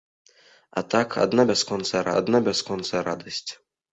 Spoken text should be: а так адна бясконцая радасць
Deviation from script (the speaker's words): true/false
true